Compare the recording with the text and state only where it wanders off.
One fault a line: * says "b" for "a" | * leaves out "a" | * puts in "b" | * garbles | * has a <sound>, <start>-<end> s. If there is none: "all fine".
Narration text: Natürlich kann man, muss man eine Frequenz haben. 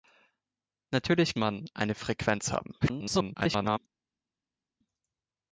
* leaves out "kann man muss"
* garbles